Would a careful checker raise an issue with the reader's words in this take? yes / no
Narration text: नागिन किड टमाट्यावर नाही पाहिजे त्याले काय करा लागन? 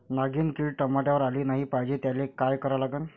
yes